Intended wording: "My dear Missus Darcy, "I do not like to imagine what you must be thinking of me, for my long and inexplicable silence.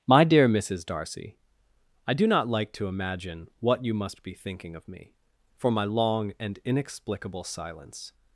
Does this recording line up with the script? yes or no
yes